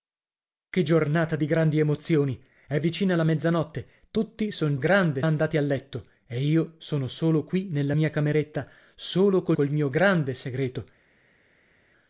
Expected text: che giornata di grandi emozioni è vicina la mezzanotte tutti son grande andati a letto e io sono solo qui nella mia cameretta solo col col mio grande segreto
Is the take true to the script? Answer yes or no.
yes